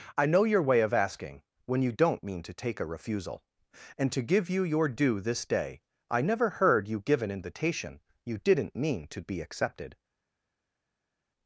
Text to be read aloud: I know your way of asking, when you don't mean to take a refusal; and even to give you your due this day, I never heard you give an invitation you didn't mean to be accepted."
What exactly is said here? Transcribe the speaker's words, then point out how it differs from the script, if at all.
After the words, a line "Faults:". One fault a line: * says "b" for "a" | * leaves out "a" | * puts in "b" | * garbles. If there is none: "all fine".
I know your way of asking, when you don't mean to take a refusal; and to give you your due this day, I never heard you give an invitation you didn't mean to be accepted."
Faults:
* leaves out "even"